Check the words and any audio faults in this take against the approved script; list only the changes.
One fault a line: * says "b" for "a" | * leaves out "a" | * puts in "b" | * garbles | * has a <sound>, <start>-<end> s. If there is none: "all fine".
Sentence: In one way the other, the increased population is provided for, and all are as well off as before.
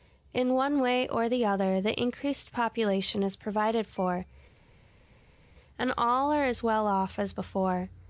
* puts in "or"